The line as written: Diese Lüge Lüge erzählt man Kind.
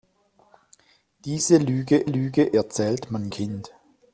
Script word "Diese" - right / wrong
right